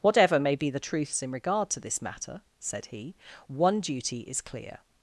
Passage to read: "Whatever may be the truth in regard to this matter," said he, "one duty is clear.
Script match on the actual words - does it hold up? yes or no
no